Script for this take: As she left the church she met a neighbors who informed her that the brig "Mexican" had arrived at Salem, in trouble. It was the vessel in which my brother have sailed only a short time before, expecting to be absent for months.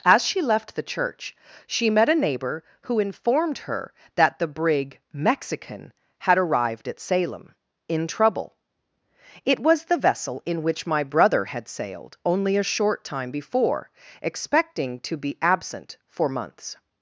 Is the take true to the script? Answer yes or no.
no